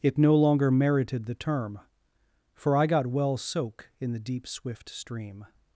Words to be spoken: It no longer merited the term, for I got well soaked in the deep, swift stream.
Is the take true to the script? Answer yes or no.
no